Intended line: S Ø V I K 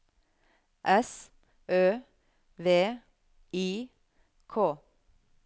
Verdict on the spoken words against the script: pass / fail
pass